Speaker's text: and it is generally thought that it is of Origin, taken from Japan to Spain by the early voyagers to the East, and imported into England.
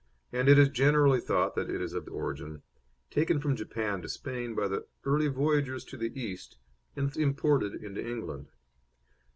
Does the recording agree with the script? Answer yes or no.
yes